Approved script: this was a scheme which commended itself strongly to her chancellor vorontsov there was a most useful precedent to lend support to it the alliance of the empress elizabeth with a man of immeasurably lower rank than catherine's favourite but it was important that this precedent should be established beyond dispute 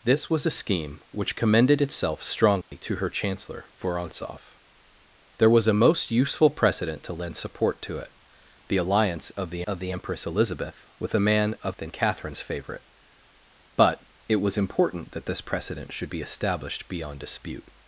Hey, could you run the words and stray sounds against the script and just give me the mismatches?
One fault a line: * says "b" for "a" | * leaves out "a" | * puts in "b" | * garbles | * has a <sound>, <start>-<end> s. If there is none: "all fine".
* has a dropout, 2.6-2.7 s
* puts in "of the"
* leaves out "immeasurably lower rank"